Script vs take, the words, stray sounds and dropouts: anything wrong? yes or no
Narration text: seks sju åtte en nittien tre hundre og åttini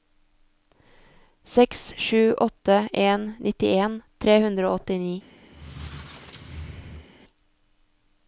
yes